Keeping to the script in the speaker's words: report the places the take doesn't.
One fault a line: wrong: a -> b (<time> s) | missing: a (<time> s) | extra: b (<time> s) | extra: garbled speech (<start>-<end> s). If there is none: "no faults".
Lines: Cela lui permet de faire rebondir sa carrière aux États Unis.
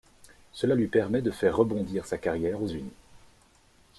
missing: États (2.7 s)